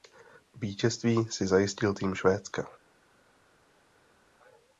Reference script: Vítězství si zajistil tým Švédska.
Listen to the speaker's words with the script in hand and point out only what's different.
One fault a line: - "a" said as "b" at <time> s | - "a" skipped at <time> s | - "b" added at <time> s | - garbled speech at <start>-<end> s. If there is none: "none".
none